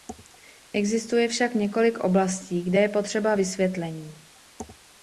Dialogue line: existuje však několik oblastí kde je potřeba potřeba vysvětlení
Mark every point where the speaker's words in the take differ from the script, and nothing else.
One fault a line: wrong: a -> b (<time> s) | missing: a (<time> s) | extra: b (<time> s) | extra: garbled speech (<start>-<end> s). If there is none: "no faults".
missing: potřeba (3.4 s)